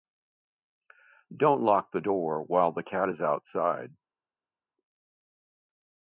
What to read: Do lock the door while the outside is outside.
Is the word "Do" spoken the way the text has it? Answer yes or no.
no